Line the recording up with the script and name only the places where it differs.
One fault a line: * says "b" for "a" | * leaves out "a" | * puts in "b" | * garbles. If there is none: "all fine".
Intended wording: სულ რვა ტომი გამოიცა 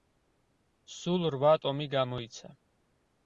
all fine